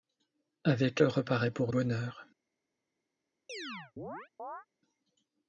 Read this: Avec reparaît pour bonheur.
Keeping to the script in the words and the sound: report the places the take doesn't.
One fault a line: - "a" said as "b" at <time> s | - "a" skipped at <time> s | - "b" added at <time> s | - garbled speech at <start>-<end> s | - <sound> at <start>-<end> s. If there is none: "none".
- chirp at 3.5-4.7 s